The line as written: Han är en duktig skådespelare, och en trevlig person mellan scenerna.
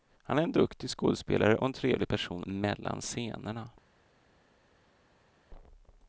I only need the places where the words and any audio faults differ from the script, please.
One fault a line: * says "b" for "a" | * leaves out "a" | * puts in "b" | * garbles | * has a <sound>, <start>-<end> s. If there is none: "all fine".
all fine